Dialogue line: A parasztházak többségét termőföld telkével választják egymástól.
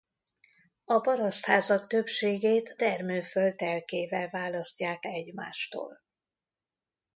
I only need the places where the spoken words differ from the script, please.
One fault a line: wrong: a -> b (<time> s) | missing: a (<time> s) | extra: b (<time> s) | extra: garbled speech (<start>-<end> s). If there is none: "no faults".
no faults